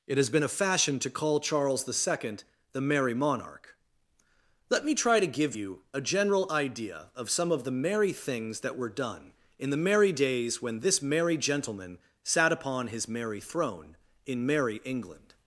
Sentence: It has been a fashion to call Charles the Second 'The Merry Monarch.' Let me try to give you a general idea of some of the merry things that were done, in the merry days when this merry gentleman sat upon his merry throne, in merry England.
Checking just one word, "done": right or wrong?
right